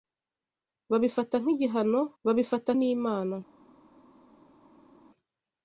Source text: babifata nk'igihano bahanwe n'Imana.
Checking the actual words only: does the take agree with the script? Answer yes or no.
no